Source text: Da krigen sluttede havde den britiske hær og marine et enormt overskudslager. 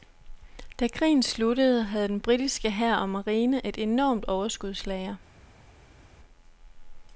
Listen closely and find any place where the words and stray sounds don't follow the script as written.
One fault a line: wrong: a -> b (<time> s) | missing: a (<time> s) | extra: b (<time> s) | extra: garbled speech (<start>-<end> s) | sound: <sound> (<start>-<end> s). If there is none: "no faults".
no faults